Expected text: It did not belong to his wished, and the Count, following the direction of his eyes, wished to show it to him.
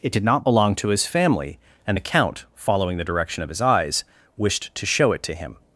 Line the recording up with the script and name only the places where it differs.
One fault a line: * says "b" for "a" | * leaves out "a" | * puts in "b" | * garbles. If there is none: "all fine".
* says "family" for "wished"